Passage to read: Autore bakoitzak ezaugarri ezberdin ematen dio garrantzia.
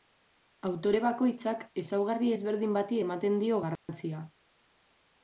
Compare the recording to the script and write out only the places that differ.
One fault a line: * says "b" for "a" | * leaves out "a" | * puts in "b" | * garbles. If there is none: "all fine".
* puts in "bati"